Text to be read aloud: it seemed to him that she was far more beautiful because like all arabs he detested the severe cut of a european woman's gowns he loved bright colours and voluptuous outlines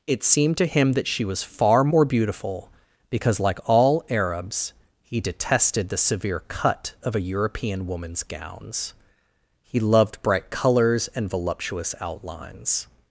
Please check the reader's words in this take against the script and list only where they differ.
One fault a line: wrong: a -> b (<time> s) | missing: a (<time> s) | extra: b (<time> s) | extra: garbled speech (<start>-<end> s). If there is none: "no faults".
no faults